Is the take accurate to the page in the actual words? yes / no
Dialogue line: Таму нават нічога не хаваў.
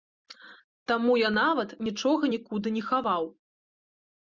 no